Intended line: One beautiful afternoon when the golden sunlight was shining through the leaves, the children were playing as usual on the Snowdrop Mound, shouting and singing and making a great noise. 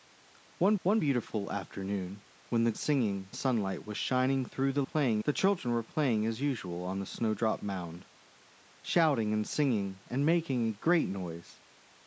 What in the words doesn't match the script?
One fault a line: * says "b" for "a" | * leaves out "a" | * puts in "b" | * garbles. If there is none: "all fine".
* puts in "one"
* says "singing" for "golden"
* says "playing" for "leaves"